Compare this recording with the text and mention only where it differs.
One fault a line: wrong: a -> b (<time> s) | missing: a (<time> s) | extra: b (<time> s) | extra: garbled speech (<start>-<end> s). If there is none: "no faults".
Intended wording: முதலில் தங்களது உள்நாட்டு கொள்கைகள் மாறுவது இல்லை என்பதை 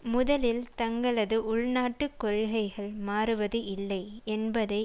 no faults